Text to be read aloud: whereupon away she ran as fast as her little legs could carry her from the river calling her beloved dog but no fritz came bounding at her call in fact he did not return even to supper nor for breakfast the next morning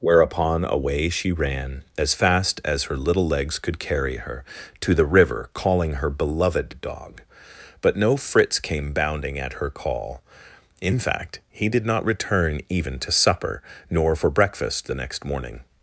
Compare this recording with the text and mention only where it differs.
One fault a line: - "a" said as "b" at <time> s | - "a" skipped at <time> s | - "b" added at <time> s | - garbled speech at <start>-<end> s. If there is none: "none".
- "from" said as "to" at 4.8 s